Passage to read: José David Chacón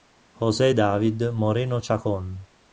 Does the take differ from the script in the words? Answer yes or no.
yes